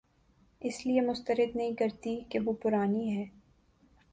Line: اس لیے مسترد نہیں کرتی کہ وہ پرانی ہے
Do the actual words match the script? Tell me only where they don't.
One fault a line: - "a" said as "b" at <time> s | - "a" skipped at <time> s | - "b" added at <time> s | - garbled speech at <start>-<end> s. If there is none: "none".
none